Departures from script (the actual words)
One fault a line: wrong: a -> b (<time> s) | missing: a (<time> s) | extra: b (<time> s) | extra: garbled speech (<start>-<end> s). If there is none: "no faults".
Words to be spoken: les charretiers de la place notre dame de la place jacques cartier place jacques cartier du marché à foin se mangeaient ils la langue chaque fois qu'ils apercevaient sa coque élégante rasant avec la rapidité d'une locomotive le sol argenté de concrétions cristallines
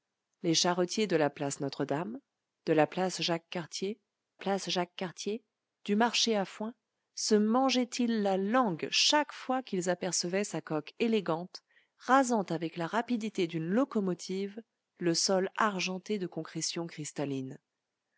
no faults